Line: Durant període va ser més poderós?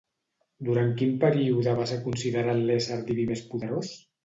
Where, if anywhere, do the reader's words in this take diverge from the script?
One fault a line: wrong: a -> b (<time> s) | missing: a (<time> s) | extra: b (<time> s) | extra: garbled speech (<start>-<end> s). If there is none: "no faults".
extra: quin (1.0 s)
extra: considerat l'ésser diví (2.1 s)